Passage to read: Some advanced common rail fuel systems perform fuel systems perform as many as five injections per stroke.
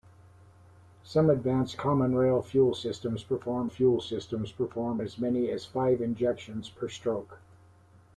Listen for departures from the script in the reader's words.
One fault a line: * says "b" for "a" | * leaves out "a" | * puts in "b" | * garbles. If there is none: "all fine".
all fine